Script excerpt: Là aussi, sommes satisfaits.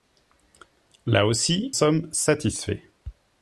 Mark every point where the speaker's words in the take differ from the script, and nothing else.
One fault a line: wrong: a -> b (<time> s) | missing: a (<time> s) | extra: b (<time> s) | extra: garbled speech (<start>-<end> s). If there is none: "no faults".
no faults